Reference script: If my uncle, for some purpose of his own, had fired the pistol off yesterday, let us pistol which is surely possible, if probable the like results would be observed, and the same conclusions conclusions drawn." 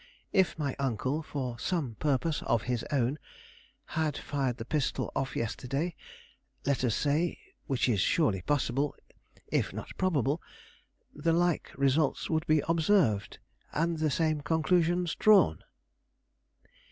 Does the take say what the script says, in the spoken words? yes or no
no